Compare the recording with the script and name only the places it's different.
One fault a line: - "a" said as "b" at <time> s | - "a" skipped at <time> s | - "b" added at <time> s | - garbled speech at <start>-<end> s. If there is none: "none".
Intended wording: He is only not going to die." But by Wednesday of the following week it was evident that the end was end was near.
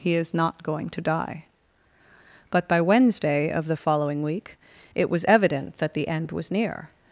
- "only" skipped at 0.3 s
- "end was" skipped at 6.5 s